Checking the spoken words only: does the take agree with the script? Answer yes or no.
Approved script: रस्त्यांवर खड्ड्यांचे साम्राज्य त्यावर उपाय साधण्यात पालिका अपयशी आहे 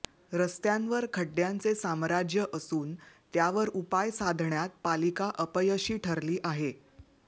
no